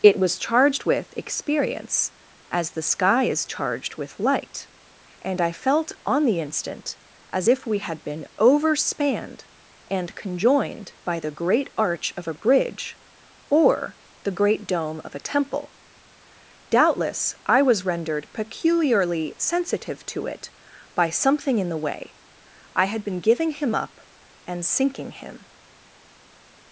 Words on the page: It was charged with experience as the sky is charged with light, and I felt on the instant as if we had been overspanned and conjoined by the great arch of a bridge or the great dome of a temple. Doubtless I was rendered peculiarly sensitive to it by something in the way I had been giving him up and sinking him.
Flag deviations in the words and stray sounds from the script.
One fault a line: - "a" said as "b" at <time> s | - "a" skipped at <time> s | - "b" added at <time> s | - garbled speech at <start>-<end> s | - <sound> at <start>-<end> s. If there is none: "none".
none